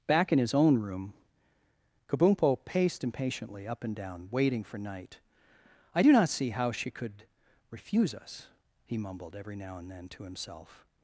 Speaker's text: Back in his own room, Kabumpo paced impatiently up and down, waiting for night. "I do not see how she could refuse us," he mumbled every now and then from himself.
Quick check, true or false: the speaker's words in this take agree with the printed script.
false